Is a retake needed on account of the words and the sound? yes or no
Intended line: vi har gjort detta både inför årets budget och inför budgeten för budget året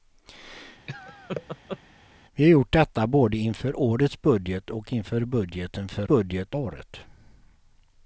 yes